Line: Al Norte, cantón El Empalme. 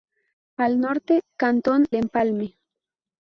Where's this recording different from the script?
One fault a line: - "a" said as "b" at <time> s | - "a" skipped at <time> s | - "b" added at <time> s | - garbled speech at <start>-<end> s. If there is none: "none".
- "El" skipped at 1.9 s